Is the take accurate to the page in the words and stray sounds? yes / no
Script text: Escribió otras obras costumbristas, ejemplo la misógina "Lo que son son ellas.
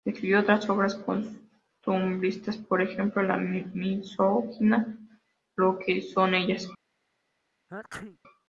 no